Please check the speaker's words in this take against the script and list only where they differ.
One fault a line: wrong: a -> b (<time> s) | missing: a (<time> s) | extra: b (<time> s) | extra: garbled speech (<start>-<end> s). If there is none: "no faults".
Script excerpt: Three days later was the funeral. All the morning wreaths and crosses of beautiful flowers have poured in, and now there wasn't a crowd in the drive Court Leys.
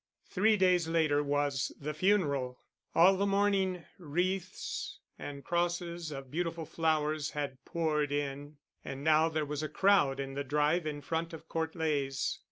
wrong: have -> had (7.4 s)
wrong: wasn't -> was (9.4 s)
extra: in front of (10.9 s)